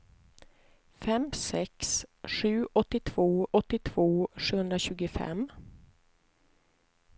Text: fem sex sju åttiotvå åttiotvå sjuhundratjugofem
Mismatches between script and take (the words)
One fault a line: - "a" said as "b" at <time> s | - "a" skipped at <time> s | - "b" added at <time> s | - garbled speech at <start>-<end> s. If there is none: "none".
none